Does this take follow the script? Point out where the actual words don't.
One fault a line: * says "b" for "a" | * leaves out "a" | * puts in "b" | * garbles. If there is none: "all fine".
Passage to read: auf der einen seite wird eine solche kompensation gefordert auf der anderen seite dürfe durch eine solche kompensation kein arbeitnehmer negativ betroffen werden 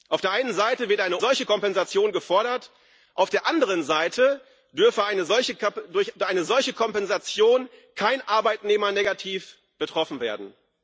all fine